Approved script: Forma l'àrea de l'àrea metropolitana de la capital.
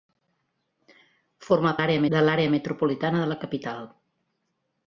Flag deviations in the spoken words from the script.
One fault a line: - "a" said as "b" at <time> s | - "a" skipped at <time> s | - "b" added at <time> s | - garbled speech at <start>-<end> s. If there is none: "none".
none